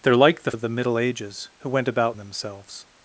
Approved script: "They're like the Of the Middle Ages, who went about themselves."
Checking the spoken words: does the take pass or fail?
pass